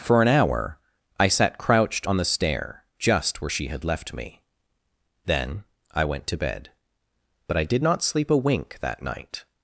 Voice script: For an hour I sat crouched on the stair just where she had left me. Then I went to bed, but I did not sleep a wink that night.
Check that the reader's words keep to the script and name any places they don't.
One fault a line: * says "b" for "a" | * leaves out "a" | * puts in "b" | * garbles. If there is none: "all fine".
all fine